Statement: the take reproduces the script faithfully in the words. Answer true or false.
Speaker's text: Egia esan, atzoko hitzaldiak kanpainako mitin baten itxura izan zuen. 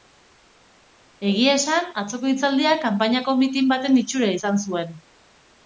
true